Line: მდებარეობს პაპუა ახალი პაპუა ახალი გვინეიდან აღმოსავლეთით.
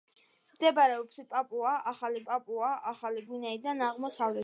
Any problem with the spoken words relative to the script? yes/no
no